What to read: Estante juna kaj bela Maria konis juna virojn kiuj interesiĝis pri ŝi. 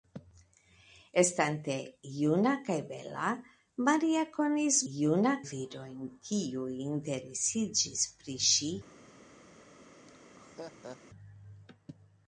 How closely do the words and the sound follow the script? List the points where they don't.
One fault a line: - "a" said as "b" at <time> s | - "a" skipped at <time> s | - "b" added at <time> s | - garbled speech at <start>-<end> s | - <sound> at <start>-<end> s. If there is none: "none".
- laugh at 10.1-11.0 s